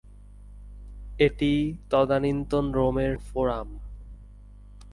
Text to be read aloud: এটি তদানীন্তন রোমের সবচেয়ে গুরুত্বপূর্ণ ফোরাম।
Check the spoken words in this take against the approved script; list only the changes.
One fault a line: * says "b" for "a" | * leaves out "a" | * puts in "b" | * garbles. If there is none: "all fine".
* leaves out "সবচেয়ে গুরুত্বপূর্ণ"